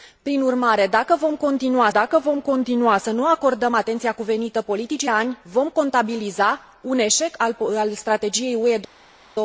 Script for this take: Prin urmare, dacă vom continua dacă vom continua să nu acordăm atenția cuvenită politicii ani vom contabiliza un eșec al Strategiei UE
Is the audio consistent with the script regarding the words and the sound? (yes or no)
yes